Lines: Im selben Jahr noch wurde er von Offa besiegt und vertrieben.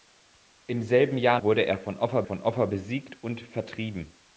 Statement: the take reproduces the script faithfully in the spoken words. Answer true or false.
false